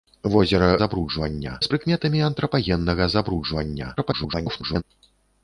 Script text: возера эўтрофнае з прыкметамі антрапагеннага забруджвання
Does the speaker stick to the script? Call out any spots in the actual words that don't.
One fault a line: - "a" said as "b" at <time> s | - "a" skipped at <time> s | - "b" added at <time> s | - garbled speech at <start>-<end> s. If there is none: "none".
- "эўтрофнае" said as "забруджвання" at 0.8 s
- garbled speech at 4.0-4.8 s